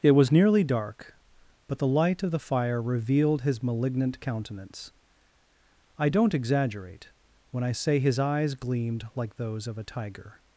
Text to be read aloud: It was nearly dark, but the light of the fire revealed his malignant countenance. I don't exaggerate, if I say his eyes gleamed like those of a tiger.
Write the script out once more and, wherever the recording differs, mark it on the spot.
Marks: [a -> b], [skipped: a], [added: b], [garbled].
It was nearly dark, but the light of the fire revealed his malignant countenance. I don't exaggerate, [if -> when] I say his eyes gleamed like those of a tiger.